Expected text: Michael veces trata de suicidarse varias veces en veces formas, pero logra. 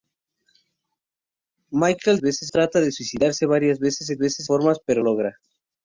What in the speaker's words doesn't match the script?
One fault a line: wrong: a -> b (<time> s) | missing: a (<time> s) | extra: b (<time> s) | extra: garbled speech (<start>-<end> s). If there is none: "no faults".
no faults